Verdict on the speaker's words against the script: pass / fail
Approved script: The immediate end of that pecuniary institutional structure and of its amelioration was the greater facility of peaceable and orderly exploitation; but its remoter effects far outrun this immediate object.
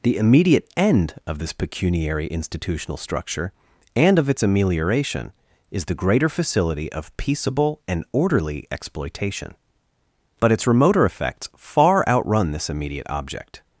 fail